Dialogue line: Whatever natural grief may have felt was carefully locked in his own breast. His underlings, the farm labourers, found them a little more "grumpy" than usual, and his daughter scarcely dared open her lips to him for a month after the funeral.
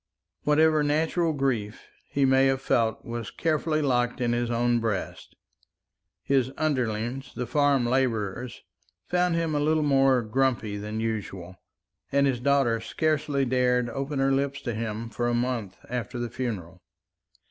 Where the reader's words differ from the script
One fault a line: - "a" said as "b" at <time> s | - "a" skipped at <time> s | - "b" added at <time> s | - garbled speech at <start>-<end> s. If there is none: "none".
- "he" added at 2.1 s
- "them" said as "him" at 9.4 s